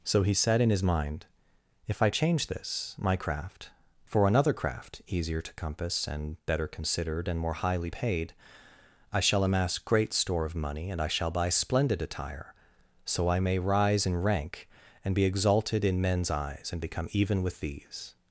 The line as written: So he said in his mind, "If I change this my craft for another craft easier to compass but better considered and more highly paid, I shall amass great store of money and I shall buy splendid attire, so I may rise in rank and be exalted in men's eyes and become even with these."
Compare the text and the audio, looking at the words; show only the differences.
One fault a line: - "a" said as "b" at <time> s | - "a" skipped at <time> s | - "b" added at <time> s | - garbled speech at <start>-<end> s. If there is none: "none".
- "but" said as "and" at 6.1 s